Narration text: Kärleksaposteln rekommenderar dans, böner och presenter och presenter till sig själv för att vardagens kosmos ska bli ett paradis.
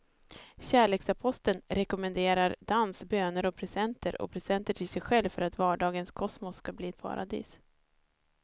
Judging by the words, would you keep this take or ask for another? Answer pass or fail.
pass